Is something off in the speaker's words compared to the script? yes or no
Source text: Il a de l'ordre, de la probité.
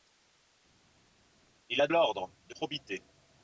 yes